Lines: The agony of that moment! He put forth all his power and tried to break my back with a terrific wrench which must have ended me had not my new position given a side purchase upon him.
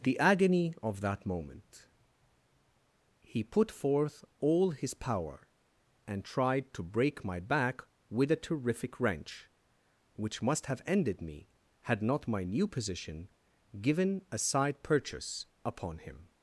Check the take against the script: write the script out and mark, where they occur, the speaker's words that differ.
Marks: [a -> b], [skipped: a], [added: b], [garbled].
The agony of that moment! He put forth all his power and tried to break my back with a terrific wrench which must have ended me had not my new position given a side purchase upon him.